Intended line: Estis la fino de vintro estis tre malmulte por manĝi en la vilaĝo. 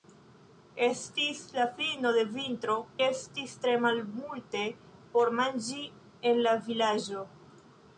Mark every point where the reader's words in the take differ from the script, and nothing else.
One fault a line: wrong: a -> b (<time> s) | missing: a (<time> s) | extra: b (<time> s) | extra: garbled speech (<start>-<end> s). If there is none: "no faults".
no faults